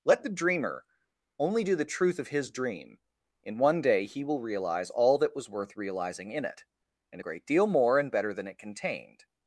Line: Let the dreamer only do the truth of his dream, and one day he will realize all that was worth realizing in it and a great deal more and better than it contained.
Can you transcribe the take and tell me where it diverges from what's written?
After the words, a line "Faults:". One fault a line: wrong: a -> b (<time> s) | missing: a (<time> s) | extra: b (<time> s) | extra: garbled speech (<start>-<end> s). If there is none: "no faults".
Let the dreamer only do the truth of his dream, in one day he will realize all that was worth realizing in it and a great deal more and better than it contained.
Faults:
wrong: and -> in (3.4 s)